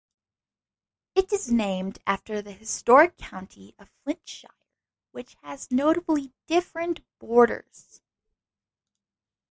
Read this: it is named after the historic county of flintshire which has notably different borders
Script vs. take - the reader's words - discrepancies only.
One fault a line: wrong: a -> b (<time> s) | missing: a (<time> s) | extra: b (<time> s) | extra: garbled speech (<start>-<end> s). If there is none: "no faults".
no faults